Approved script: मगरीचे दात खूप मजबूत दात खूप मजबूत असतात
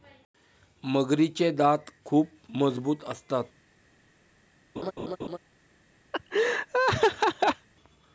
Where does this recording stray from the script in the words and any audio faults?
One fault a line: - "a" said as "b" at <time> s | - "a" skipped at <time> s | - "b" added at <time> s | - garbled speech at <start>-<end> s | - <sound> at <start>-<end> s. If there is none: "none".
- "दात खूप मजबूत" skipped at 3.0 s
- laugh at 4.8-5.4 s
- laugh at 6.1-7.7 s